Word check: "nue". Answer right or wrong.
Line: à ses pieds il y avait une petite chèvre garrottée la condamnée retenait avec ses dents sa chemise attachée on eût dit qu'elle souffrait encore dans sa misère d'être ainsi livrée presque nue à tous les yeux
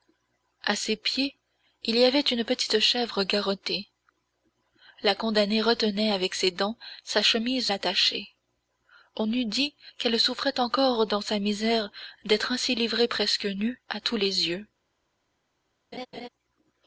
right